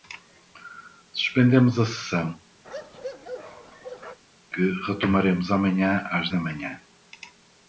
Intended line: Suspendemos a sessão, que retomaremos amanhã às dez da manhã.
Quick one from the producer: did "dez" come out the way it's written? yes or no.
no